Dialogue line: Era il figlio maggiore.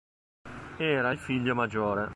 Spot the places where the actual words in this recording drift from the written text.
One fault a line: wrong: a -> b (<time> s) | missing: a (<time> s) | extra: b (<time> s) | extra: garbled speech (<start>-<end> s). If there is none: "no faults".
no faults